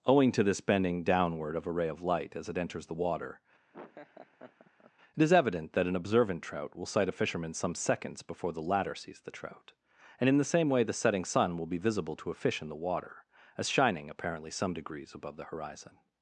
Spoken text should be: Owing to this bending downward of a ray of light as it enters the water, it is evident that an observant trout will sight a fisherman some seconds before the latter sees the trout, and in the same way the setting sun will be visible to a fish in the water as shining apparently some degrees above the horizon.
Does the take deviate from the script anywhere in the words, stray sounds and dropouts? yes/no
yes